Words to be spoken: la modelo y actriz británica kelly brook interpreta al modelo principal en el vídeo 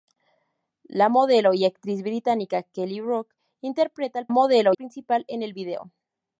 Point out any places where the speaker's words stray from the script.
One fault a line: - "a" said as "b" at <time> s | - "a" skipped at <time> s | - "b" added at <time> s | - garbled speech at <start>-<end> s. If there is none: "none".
none